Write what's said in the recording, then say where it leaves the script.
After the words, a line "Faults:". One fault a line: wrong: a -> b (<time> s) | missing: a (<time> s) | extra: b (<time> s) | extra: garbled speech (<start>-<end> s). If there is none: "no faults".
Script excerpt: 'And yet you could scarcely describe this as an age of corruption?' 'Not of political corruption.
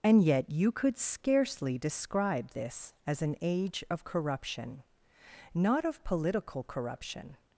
'And yet you could scarcely describe this as an age of corruption?' 'Not of political corruption.
Faults:
no faults